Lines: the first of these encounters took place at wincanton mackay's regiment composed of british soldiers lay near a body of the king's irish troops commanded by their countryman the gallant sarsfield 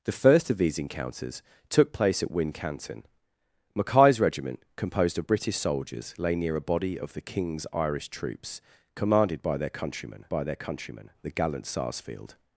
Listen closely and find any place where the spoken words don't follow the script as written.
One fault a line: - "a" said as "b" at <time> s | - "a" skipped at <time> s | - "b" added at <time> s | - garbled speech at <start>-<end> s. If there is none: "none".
- "by their countryman" added at 10.3 s